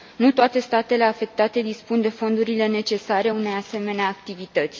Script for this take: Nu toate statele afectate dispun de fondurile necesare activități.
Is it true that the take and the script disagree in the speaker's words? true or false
true